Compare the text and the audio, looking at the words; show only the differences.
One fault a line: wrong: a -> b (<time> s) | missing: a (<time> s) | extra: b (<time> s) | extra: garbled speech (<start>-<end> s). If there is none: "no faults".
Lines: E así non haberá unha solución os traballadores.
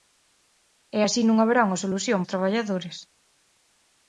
no faults